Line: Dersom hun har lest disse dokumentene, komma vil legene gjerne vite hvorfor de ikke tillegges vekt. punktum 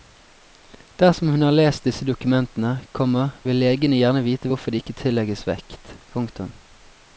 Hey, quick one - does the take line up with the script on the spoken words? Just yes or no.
yes